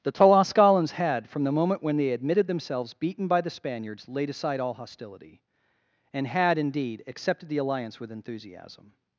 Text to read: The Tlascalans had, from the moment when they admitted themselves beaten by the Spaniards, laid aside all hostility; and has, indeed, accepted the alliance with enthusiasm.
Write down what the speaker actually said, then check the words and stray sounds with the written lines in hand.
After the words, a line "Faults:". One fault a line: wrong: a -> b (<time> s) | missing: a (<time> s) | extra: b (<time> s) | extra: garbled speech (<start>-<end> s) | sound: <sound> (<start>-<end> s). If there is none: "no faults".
The Tlascalans had, from the moment when they admitted themselves beaten by the Spaniards, laid aside all hostility; and had, indeed, accepted the alliance with enthusiasm.
Faults:
wrong: has -> had (6.3 s)